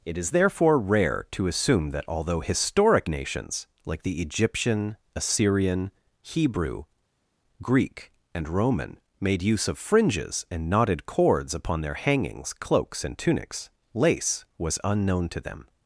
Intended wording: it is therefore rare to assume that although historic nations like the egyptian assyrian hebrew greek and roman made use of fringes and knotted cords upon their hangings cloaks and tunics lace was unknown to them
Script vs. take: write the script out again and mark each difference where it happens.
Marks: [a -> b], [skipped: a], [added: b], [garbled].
it is therefore rare to assume that although historic nations like the egyptian assyrian hebrew greek and roman made use of fringes and knotted cords upon their hangings cloaks and tunics lace was unknown to them